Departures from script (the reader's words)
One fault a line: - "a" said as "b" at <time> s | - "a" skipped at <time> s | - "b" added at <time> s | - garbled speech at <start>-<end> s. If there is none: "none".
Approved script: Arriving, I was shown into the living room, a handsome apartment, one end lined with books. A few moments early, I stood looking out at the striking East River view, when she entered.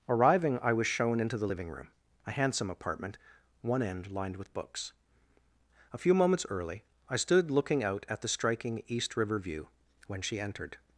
none